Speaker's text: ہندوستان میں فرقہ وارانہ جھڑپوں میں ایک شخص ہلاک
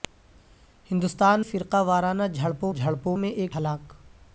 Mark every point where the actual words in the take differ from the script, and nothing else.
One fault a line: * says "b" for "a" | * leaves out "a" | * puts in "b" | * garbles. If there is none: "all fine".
* leaves out "میں"
* puts in "جھڑپوں"
* leaves out "شخص"